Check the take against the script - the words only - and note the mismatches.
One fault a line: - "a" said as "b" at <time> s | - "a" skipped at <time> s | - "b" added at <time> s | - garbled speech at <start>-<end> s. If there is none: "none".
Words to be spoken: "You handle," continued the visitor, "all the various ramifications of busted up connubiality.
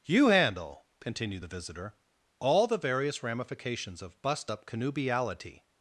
- "busted" said as "bust" at 4.2 s